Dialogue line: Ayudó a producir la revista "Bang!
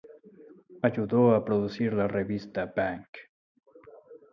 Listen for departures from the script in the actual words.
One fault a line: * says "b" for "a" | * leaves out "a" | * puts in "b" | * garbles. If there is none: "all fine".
all fine